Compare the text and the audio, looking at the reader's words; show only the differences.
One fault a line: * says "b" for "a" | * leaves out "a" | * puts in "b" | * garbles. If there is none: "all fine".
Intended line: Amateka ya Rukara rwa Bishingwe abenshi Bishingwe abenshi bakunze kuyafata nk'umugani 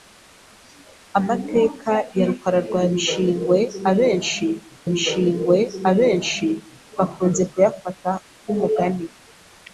all fine